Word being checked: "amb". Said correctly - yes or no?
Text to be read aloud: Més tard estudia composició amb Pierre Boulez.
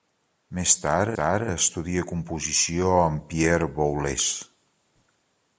yes